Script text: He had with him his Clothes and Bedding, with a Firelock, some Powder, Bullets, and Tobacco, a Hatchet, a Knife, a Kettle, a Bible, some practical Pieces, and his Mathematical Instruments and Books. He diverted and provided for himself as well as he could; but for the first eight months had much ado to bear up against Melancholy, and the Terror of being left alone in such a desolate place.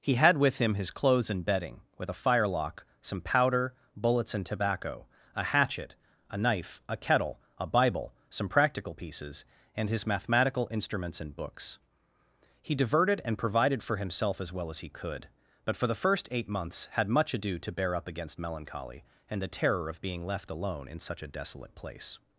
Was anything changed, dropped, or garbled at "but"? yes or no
no